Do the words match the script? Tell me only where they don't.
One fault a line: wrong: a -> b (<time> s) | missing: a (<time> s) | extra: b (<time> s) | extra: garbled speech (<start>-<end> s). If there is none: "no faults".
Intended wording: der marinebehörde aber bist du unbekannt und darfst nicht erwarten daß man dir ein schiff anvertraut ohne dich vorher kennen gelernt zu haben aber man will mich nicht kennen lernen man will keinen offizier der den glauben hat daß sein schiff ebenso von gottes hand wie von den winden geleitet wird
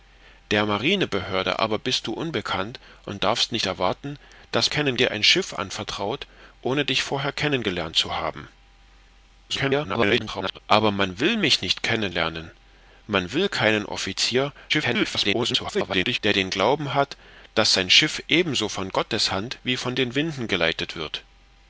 wrong: man -> kennen (4.7 s)
extra: garbled speech (9.5-10.6 s)
extra: garbled speech (14.7-16.2 s)